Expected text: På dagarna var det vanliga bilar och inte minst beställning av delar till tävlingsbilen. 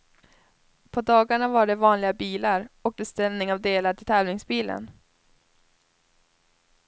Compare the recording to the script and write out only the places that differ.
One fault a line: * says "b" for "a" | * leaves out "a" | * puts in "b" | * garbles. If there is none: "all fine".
* leaves out "inte minst"